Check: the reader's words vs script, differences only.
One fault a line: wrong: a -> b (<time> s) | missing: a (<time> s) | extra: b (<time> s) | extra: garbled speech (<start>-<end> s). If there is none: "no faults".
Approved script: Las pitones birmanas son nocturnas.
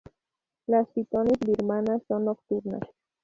no faults